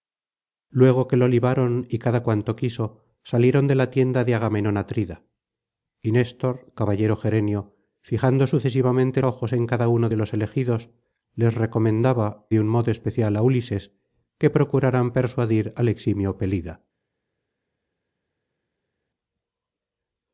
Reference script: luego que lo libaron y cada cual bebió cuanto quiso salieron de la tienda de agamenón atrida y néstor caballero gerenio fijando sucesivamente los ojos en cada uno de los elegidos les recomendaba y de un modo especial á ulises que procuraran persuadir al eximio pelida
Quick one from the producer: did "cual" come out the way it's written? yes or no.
no